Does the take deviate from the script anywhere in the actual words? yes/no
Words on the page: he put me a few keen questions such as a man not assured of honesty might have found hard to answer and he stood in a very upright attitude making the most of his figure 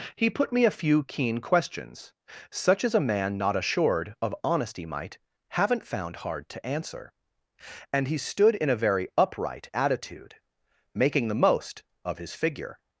yes